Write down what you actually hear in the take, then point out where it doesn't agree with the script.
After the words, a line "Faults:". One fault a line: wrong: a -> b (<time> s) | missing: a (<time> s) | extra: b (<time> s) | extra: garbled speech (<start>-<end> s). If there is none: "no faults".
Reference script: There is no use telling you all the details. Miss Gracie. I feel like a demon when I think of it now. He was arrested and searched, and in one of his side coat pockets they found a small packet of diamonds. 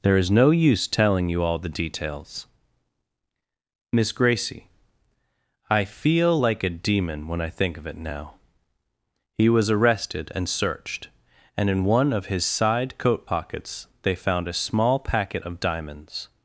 There is no use telling you all the details. Miss Gracie. I feel like a demon when I think of it now. He was arrested and searched, and in one of his side coat pockets they found a small packet of diamonds.
Faults:
no faults